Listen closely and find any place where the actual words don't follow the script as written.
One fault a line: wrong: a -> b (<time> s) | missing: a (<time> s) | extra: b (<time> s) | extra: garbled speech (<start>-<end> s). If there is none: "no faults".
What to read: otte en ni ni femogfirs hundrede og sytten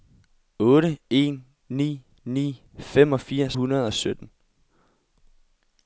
no faults